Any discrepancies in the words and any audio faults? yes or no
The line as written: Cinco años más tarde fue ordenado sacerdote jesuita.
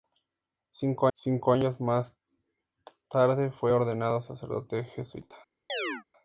yes